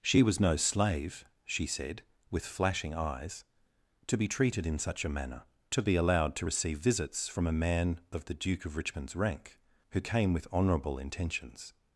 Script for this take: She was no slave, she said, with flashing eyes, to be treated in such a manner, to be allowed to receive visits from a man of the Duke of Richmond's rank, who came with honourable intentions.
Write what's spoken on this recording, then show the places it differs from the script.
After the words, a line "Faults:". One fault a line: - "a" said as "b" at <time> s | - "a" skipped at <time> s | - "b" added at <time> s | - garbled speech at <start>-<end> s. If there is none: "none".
She was no slave, she said, with flashing eyes, to be treated in such a manner, to be allowed to receive visits from a man of the Duke of Richmond's rank, who came with honourable intentions.
Faults:
none